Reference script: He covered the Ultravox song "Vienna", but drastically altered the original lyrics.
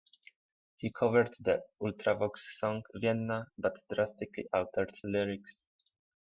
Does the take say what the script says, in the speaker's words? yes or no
no